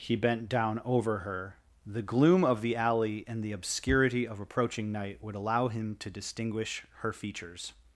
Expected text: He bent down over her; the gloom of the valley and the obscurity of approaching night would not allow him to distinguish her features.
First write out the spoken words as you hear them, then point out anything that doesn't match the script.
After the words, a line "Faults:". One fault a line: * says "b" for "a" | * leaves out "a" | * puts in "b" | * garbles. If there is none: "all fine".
He bent down over her; the gloom of the alley and the obscurity of approaching night would allow him to distinguish her features.
Faults:
* says "alley" for "valley"
* leaves out "not"